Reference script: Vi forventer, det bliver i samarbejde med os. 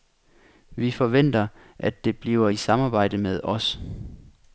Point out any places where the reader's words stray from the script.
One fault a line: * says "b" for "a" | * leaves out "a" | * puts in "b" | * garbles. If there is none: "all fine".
* puts in "at"